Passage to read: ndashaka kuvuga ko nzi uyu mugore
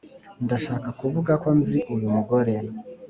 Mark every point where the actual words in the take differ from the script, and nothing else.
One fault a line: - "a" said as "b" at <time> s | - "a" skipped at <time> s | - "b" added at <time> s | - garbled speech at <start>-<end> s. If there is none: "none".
none